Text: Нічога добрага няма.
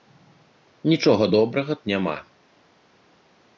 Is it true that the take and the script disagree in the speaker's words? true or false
false